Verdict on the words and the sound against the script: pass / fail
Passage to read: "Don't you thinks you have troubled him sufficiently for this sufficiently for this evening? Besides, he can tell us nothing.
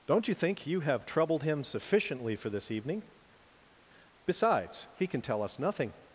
fail